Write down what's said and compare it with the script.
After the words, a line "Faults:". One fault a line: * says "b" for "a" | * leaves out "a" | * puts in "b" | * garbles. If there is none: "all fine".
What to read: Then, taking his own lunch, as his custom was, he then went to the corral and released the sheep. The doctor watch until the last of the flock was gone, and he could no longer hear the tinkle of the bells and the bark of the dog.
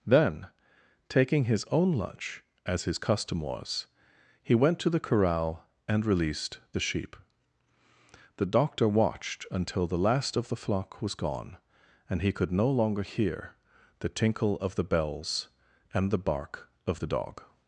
Then, taking his own lunch, as his custom was, he went to the corral and released the sheep. The doctor watched until the last of the flock was gone, and he could no longer hear the tinkle of the bells and the bark of the dog.
Faults:
* leaves out "then"
* says "watched" for "watch"